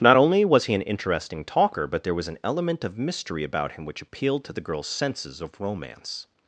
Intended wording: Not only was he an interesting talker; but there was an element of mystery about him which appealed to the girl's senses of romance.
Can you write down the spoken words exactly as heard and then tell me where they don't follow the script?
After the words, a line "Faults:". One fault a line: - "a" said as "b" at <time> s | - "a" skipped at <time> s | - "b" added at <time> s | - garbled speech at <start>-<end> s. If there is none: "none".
Not only was he an interesting talker; but there was an element of mystery about him which appealed to the girl's senses of romance.
Faults:
none